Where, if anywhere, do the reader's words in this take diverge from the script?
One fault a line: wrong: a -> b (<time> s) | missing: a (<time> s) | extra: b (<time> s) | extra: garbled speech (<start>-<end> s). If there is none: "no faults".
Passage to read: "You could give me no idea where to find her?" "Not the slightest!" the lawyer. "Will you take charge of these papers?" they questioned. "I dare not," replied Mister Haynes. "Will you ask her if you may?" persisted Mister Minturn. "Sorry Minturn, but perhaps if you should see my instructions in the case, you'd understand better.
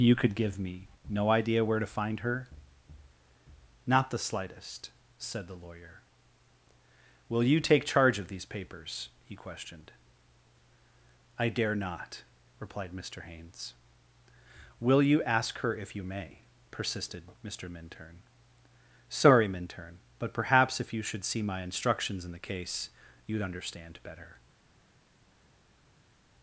extra: said (5.2 s)
wrong: they -> he (9.2 s)